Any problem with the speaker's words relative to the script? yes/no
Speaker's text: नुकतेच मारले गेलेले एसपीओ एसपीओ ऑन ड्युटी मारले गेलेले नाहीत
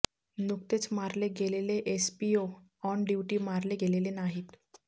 yes